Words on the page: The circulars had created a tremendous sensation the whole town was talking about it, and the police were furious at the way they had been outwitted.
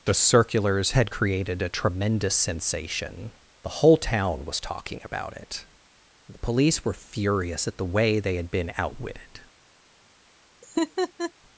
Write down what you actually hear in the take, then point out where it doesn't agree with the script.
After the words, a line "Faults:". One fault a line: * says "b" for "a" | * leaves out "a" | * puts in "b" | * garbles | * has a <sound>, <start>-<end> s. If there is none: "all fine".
The circulars had created a tremendous sensation the whole town was talking about it, the police were furious at the way they had been outwitted.
Faults:
* leaves out "and"
* has a laugh, 10.6-11.3 s